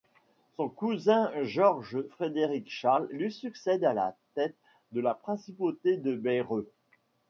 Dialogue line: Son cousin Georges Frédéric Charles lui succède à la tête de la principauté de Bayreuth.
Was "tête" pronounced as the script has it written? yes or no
yes